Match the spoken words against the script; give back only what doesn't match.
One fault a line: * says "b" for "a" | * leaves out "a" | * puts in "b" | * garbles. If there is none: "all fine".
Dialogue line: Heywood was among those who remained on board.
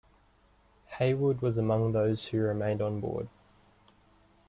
all fine